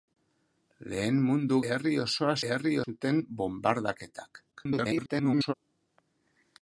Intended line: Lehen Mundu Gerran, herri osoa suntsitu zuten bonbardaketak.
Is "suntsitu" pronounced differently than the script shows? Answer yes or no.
yes